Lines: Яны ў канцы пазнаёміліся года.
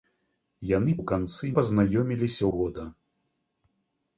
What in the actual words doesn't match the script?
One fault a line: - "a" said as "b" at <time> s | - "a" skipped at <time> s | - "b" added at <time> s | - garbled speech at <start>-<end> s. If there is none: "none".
none